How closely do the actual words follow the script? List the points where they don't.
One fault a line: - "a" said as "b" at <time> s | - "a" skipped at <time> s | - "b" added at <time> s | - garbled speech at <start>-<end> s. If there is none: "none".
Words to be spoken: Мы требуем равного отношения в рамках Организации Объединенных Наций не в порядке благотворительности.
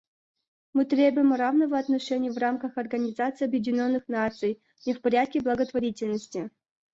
none